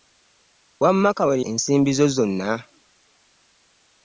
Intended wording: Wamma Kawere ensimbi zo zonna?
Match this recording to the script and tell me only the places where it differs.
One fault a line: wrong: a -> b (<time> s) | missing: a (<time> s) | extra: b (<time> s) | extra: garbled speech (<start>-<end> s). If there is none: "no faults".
no faults